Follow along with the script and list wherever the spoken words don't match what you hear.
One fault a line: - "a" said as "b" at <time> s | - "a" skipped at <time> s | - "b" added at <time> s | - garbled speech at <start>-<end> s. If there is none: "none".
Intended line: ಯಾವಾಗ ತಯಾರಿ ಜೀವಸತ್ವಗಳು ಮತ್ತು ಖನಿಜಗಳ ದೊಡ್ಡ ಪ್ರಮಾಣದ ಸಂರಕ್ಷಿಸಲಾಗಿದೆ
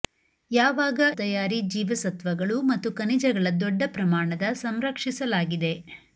none